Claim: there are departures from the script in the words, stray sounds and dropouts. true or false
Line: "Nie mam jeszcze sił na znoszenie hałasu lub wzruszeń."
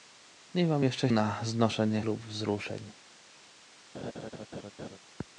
true